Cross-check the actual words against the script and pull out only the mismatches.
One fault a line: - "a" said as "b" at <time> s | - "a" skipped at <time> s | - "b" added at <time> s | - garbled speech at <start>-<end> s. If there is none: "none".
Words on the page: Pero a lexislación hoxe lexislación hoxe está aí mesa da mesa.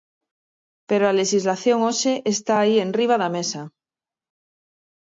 - "lexislación hoxe" skipped at 2.1 s
- "mesa" said as "enriba" at 2.9 s